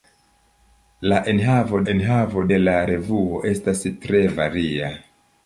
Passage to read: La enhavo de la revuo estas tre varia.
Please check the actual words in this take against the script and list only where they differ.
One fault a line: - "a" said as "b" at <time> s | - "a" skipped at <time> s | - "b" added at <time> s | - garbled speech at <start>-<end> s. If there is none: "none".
- "enhavo" added at 1.9 s